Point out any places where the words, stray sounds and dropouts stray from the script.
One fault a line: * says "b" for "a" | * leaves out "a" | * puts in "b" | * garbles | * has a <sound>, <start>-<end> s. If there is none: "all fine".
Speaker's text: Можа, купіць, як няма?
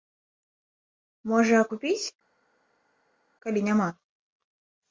* says "калі" for "як"